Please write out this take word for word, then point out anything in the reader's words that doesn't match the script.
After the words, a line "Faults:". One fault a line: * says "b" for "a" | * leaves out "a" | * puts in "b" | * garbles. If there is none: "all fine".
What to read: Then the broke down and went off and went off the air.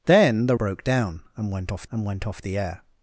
Then the broke down and went off and went off the air.
Faults:
all fine